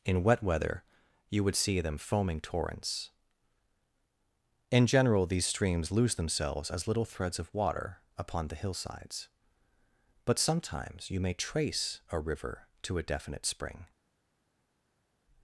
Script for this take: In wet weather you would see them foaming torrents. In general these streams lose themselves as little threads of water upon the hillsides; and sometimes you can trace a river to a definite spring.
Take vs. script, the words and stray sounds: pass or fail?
fail